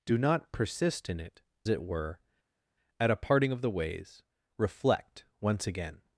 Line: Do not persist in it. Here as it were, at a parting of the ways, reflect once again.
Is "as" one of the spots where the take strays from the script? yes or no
yes